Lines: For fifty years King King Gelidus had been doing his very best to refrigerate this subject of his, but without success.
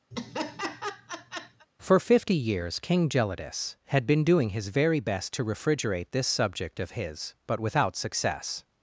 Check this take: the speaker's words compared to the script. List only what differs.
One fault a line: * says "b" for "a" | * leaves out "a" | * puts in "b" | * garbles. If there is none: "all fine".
* leaves out "King"